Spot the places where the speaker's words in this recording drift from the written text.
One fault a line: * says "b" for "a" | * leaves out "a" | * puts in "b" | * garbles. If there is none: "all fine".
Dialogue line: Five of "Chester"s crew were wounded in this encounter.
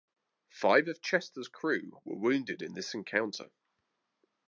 all fine